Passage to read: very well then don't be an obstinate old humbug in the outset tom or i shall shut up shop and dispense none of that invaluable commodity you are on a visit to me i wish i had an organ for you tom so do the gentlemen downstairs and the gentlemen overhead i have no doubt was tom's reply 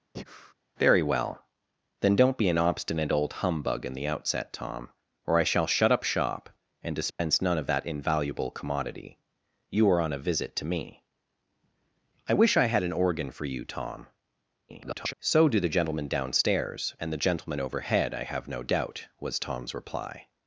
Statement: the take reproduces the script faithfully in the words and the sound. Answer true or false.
false